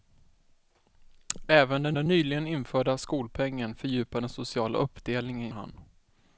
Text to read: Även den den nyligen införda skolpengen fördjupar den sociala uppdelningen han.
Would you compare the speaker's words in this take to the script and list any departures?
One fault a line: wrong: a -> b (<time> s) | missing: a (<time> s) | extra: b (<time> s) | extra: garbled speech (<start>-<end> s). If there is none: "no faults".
no faults